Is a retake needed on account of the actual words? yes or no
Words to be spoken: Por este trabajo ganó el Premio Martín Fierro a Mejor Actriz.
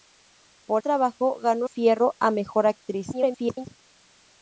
yes